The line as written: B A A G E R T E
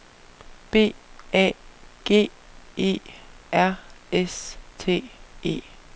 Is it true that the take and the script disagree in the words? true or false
true